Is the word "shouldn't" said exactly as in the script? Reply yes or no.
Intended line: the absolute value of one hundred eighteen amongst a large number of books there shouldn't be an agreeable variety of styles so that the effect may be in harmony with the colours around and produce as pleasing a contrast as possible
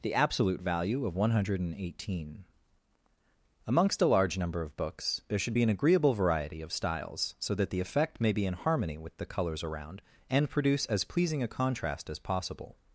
no